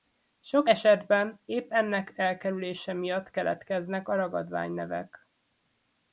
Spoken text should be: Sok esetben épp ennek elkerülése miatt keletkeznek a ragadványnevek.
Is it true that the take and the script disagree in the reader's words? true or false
false